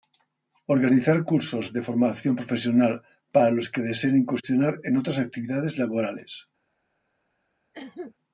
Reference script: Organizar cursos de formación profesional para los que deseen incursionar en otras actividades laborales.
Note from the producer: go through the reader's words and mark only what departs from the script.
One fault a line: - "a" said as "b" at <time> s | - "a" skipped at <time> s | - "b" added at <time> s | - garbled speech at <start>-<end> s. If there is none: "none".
none